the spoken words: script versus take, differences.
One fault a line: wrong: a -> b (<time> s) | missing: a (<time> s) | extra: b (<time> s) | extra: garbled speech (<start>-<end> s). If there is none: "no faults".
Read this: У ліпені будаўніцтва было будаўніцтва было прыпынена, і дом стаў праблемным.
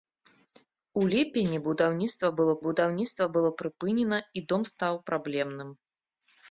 no faults